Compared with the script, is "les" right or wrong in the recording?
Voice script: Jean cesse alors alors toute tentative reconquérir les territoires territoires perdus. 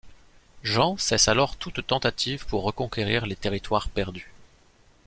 right